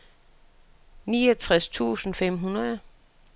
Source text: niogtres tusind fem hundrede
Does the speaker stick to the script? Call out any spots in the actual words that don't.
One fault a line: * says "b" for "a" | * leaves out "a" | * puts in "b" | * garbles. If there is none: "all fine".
all fine